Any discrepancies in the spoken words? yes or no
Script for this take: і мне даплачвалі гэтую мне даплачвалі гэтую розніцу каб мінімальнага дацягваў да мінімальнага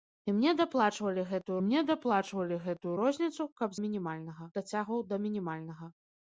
no